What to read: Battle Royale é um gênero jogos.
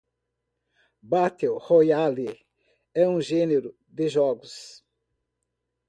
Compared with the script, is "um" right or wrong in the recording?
right